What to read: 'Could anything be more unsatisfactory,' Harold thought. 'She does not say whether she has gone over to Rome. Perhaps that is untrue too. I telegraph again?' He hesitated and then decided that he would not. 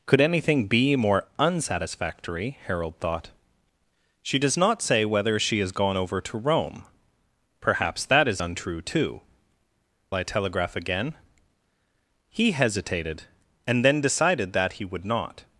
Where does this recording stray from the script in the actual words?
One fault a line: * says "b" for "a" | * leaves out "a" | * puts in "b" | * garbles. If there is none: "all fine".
all fine